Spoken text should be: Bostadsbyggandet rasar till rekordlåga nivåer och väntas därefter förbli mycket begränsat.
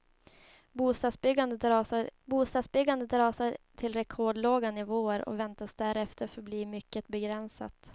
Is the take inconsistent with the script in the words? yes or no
yes